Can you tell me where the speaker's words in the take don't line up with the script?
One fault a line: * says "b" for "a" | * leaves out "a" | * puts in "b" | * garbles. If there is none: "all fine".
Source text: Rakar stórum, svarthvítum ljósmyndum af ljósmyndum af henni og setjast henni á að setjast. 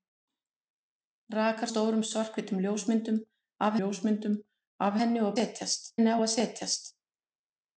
all fine